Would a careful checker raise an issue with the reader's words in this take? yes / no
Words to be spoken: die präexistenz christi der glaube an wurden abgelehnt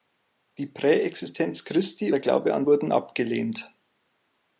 no